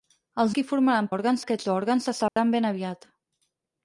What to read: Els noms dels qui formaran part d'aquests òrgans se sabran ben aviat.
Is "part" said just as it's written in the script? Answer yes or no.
no